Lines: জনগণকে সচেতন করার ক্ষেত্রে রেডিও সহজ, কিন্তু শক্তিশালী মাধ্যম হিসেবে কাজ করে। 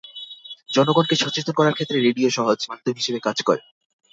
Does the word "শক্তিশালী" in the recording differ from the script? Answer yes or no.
yes